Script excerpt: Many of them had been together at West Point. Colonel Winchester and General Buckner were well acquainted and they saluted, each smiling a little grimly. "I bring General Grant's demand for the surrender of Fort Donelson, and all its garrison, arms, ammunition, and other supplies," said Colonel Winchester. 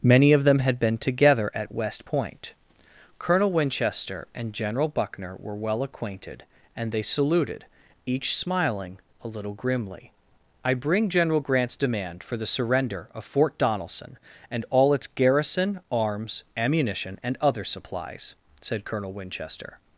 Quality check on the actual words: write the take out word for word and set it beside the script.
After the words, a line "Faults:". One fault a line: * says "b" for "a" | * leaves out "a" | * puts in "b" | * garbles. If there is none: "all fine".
Many of them had been together at West Point. Colonel Winchester and General Buckner were well acquainted and they saluted, each smiling a little grimly. "I bring General Grant's demand for the surrender of Fort Donelson, and all its garrison, arms, ammunition, and other supplies," said Colonel Winchester.
Faults:
all fine